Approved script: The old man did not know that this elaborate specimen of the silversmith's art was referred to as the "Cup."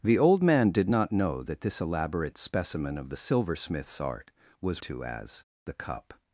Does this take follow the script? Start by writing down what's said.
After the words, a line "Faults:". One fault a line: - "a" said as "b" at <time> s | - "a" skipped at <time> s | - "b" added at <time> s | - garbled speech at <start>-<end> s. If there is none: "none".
The old man did not know that this elaborate specimen of the silversmith's art was to as the "Cup."
Faults:
- "referred" skipped at 4.8 s